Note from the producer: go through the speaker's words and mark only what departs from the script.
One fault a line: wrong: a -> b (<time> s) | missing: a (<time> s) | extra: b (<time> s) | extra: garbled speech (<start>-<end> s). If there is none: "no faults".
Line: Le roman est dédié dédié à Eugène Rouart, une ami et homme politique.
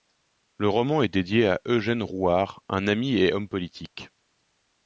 missing: dédié (1.5 s)
wrong: une -> un (2.7 s)